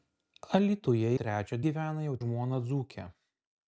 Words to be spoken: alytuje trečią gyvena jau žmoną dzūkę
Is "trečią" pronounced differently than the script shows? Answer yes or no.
no